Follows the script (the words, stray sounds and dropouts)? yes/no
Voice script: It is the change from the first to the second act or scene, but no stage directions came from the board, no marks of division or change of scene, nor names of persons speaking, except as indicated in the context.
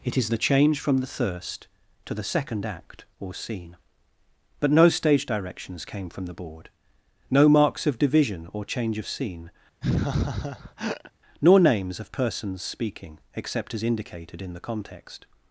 no